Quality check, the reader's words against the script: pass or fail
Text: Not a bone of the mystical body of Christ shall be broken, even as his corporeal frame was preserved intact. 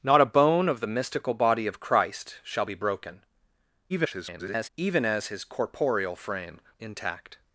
fail